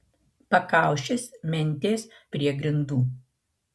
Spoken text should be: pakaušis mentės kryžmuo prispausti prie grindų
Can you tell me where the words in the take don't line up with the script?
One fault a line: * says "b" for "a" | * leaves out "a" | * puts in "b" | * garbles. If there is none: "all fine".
* leaves out "kryžmuo prispausti"